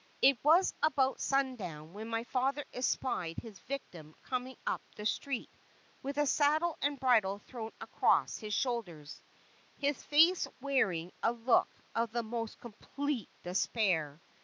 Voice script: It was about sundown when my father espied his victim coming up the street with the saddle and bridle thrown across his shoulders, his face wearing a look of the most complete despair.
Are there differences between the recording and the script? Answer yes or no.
no